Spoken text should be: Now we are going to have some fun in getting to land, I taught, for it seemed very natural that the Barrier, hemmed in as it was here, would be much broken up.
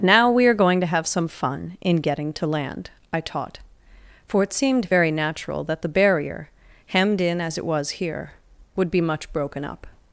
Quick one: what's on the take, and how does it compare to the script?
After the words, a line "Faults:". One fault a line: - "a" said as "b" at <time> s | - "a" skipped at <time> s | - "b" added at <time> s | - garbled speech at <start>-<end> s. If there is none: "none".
Now we are going to have some fun in getting to land, I taught, for it seemed very natural that the Barrier, hemmed in as it was here, would be much broken up.
Faults:
none